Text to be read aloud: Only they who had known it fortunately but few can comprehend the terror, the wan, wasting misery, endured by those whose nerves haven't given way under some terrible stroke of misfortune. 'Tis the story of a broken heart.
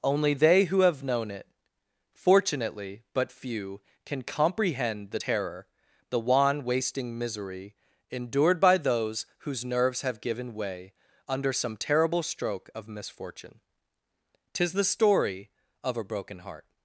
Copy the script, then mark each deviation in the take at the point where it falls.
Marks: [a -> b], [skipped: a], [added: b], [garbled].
Only they who [had -> have] known it fortunately but few can comprehend the terror, the wan, wasting misery, endured by those whose nerves [haven't -> have] given way under some terrible stroke of misfortune. 'Tis the story of a broken heart.